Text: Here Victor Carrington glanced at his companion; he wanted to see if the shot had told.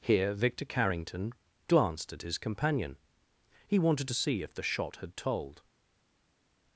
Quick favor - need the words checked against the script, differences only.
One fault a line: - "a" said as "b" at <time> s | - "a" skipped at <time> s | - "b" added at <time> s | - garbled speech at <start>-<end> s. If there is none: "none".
none